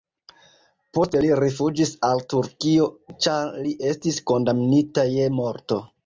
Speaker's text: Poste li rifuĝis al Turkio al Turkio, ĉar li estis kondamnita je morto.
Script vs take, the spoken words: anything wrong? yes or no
yes